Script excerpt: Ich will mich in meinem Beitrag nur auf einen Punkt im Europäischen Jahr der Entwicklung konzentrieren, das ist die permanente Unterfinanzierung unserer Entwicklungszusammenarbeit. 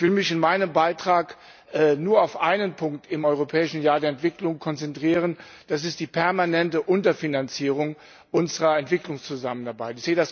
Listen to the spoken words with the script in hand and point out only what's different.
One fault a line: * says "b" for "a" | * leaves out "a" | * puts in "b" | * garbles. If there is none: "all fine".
all fine